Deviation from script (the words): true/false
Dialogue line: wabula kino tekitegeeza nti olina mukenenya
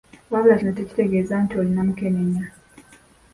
false